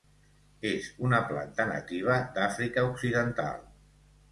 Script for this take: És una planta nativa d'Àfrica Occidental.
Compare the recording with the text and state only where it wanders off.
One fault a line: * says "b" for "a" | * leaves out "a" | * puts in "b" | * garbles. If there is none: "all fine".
all fine